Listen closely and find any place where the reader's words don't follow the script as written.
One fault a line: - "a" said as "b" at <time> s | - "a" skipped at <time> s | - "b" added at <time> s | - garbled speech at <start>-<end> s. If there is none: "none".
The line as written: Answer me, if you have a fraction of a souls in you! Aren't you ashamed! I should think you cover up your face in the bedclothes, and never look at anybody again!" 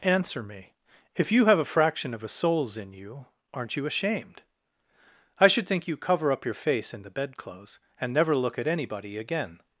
none